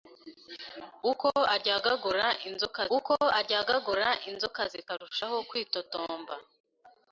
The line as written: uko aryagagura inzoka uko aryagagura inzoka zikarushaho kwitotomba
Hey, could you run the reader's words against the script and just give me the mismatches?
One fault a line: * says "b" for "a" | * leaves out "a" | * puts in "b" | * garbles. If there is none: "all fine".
all fine